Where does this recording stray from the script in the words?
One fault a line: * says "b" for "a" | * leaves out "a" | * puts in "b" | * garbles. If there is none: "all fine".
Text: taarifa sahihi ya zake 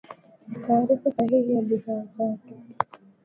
* puts in "bidhaa"